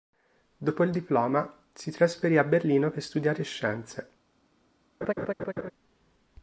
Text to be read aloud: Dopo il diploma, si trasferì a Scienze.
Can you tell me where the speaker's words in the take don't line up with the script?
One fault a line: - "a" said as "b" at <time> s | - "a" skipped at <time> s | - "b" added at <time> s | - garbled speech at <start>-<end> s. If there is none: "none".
- "Berlino per studiare" added at 2.4 s